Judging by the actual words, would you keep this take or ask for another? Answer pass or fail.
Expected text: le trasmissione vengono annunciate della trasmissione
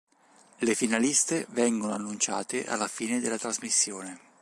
fail